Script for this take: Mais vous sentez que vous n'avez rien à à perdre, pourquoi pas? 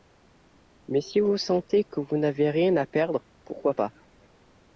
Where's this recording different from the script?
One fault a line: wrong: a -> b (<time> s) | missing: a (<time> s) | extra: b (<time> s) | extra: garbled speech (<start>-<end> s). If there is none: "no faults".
extra: si (1.0 s)
missing: à (2.9 s)